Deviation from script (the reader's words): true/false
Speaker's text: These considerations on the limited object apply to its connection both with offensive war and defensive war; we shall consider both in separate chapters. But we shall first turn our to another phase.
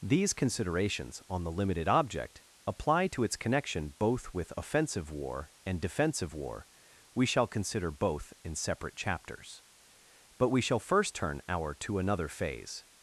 false